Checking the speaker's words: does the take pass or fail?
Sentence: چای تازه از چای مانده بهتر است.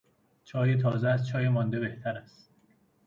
pass